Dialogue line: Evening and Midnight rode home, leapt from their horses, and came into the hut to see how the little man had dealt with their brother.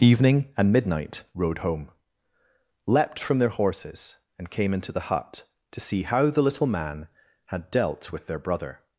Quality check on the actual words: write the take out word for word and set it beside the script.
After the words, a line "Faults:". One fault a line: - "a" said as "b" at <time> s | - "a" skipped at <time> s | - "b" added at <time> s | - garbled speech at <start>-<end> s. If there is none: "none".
Evening and Midnight rode home, leapt from their horses, and came into the hut to see how the little man had dealt with their brother.
Faults:
none